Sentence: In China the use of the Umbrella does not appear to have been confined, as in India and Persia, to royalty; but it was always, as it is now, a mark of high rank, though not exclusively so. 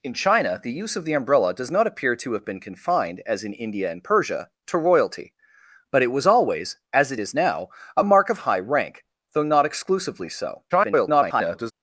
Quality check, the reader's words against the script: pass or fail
fail